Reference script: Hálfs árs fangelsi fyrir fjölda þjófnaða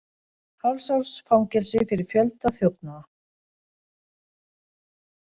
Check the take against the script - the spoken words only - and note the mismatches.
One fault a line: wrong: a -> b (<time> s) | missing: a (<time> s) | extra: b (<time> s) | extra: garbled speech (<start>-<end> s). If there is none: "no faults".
no faults